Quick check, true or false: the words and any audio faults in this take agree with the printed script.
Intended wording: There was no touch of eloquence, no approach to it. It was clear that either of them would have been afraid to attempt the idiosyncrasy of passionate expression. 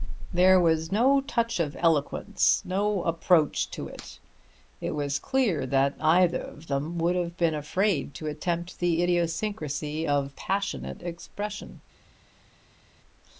true